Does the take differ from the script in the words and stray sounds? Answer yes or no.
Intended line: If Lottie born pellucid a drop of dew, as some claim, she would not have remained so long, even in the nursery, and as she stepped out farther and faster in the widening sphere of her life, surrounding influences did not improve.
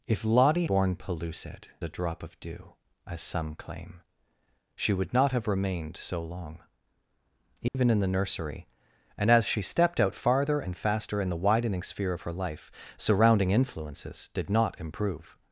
yes